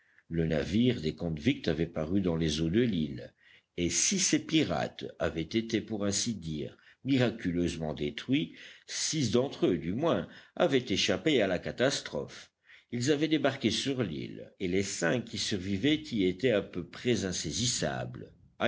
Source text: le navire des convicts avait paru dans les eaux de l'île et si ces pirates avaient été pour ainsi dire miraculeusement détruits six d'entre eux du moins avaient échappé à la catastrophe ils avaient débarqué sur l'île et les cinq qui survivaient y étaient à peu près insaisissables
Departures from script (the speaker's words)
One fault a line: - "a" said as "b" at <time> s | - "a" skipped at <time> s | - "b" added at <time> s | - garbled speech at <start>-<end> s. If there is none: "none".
none